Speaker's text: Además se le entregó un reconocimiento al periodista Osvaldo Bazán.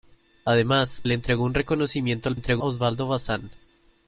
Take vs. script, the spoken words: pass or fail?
fail